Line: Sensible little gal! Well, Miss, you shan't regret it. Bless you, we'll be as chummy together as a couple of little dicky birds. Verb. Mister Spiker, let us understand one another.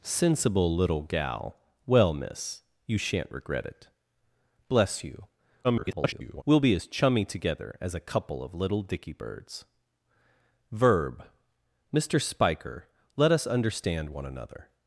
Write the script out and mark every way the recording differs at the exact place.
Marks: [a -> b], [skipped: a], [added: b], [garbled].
Sensible little gal! Well, Miss, you shan't regret it. Bless you, [garbled] we'll be as chummy together as a couple of little dicky birds. Verb. Mister Spiker, let us understand one another.